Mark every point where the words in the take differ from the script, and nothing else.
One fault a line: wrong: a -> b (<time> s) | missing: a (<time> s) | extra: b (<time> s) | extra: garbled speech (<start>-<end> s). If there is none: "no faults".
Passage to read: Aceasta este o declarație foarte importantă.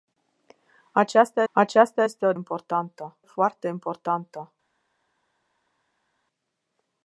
extra: aceasta (1.5 s)
wrong: declarație -> importantă (2.3 s)